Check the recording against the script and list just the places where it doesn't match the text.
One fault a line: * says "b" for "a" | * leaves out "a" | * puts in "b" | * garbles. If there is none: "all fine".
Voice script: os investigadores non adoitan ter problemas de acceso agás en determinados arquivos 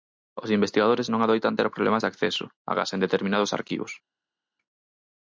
all fine